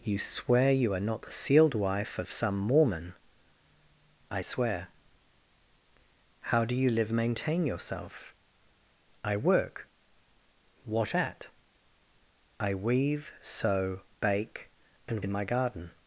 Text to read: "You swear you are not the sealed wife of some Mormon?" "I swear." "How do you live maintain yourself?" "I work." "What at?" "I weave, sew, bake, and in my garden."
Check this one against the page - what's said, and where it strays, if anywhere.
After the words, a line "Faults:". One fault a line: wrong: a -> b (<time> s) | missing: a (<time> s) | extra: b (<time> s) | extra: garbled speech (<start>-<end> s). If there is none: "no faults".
"You swear you are not the sealed wife of some Mormon?" "I swear." "How do you live maintain yourself?" "I work." "What at?" "I weave, sew, bake, and in my garden."
Faults:
no faults